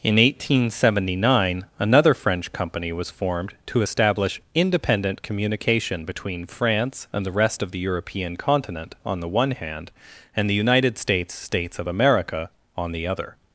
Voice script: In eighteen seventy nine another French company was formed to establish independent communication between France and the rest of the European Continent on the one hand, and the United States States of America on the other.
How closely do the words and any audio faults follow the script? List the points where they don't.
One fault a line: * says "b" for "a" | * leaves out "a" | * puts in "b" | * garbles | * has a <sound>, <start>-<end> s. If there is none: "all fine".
all fine